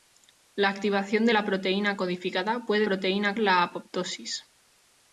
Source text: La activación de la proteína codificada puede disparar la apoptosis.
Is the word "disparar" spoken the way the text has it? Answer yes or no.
no